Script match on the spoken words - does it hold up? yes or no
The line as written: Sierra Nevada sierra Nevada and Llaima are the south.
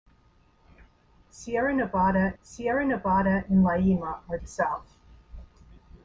yes